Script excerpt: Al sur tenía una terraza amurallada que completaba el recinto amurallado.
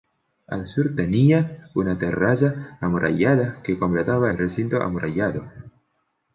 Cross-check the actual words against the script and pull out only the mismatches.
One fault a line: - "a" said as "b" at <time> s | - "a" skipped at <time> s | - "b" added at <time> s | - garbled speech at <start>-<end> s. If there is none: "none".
none